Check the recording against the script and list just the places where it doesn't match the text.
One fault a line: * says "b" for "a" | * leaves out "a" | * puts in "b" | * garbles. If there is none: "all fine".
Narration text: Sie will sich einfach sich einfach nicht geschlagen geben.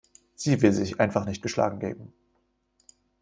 * leaves out "sich einfach"